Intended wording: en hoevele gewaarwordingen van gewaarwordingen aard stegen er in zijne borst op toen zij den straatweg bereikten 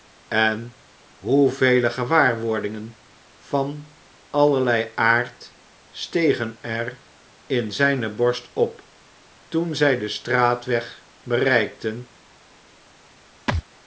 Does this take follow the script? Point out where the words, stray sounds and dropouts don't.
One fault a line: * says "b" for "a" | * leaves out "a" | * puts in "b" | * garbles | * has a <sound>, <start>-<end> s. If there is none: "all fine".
* says "allerlei" for "gewaarwordingen"
* has a thud, 13.5-13.6 s